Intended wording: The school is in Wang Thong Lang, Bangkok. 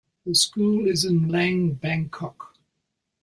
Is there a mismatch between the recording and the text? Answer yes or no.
yes